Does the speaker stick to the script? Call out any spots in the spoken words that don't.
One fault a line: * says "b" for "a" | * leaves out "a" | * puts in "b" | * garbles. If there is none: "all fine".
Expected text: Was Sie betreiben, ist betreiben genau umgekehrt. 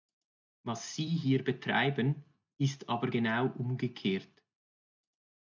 * puts in "hier"
* says "aber" for "betreiben"